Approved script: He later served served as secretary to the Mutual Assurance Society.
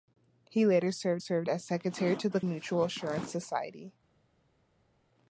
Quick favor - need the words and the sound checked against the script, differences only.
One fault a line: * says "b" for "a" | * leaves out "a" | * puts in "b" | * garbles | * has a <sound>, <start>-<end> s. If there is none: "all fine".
all fine